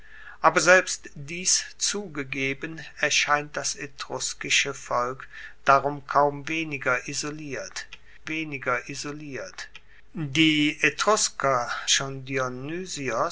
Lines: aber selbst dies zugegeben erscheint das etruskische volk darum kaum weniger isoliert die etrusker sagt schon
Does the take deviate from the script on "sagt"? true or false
true